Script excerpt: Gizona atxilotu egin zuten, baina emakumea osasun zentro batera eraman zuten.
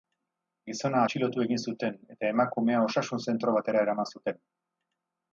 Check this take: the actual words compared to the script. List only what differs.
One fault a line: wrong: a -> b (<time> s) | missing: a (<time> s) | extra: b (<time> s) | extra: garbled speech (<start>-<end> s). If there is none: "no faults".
wrong: baina -> eta (2.1 s)